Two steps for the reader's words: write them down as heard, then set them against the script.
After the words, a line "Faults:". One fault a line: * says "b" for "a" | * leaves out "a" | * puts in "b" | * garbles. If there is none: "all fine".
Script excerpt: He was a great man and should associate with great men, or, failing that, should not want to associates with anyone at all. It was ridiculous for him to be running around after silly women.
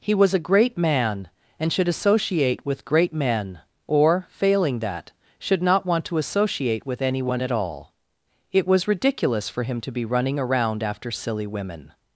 He was a great man and should associate with great men, or, failing that, should not want to associate with anyone at all. It was ridiculous for him to be running around after silly women.
Faults:
* says "associate" for "associates"